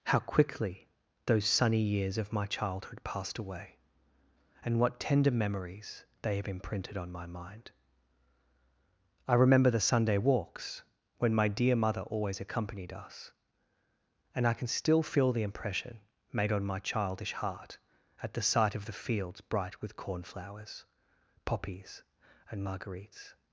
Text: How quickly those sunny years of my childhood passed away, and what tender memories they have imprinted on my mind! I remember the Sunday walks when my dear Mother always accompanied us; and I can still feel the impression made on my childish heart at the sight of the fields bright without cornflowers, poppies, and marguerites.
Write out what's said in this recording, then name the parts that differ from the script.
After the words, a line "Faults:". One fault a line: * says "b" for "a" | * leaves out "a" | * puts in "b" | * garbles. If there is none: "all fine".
How quickly those sunny years of my childhood passed away, and what tender memories they have imprinted on my mind! I remember the Sunday walks when my dear Mother always accompanied us; and I can still feel the impression made on my childish heart at the sight of the fields bright with cornflowers, poppies, and marguerites.
Faults:
* says "with" for "without"